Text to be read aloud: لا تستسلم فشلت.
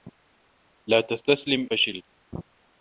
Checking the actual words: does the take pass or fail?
pass